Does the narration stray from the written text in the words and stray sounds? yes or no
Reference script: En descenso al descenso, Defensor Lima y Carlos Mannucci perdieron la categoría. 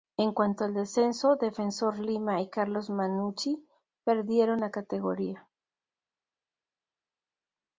yes